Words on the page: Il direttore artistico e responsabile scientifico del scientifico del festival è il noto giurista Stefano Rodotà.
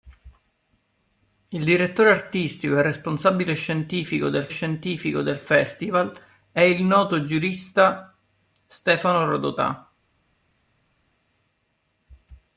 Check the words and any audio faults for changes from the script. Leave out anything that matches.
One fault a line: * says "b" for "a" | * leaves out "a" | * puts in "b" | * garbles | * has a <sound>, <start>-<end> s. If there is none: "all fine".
all fine